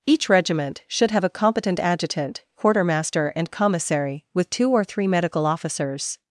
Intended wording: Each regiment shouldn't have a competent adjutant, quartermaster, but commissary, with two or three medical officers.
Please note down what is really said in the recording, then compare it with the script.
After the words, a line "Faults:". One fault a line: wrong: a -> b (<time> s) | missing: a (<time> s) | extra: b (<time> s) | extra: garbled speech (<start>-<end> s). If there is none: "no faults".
Each regiment should have a competent adjutant, quartermaster, and commissary, with two or three medical officers.
Faults:
wrong: shouldn't -> should (0.9 s)
wrong: but -> and (3.4 s)